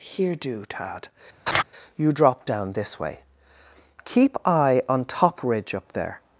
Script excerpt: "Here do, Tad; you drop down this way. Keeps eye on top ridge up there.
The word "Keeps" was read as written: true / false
false